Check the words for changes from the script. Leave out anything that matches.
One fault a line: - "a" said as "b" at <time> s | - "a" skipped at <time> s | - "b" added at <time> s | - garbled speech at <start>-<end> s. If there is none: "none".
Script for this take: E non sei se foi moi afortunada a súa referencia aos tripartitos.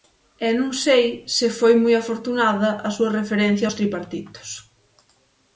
none